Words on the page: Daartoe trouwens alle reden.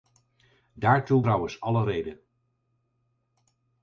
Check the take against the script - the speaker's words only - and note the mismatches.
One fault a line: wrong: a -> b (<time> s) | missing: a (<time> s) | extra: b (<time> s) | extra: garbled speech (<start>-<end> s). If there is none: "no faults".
no faults